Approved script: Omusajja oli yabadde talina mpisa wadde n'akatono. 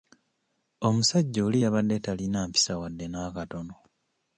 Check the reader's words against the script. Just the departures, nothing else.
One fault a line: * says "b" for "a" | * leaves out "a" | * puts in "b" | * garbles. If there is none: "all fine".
all fine